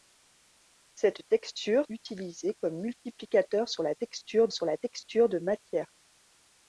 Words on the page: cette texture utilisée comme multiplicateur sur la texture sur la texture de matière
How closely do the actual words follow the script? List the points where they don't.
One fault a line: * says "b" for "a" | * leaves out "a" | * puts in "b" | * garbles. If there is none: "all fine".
all fine